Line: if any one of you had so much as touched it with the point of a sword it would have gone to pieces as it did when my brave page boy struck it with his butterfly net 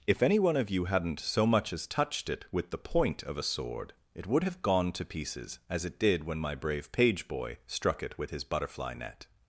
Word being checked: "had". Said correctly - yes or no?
no